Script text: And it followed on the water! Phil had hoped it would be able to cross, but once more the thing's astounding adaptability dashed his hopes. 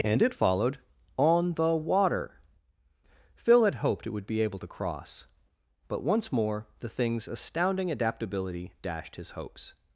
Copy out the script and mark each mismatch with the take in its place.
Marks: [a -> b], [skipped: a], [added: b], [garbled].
And it followed on the water! Phil had hoped it would be able to cross, but once more the thing's astounding adaptability dashed his hopes.